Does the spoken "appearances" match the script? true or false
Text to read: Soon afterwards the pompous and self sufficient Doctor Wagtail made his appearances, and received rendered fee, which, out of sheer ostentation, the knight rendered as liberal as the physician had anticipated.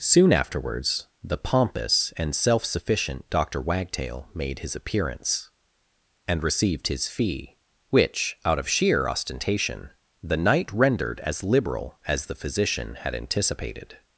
false